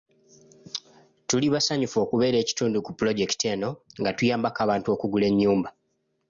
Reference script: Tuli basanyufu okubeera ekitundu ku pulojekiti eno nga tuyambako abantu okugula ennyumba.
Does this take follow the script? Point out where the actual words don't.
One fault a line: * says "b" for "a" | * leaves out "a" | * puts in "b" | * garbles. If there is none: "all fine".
all fine